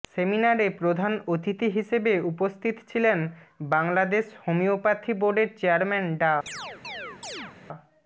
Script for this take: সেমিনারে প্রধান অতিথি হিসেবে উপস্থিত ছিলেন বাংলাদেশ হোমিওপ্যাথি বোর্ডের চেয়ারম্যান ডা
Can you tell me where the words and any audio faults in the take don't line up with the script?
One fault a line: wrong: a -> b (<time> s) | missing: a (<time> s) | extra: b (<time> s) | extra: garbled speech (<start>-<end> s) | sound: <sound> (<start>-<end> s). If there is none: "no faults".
sound: chirp (6.5-7.6 s)